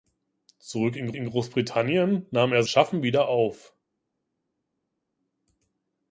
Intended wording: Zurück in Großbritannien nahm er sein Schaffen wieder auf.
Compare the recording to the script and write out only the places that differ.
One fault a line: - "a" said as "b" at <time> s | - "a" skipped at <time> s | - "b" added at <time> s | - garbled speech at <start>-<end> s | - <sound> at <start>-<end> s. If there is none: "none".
- "in" added at 1.1 s
- "sein" skipped at 2.6 s